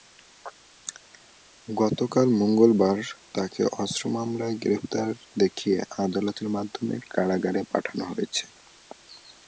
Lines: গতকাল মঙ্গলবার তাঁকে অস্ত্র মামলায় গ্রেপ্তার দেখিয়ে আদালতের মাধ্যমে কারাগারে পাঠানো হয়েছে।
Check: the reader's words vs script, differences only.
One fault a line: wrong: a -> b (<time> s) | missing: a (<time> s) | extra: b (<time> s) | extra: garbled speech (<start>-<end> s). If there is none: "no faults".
no faults